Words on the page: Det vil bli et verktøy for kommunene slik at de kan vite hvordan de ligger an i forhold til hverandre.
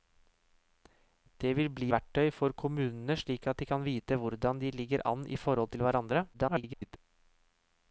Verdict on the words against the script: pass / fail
fail